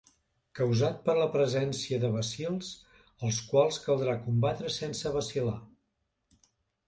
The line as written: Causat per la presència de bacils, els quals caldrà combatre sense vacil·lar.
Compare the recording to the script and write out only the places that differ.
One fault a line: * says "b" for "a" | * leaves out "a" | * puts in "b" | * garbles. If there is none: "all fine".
all fine